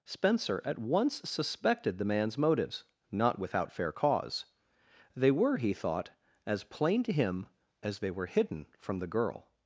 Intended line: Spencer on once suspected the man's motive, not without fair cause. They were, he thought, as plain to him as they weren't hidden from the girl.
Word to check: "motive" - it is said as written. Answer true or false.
false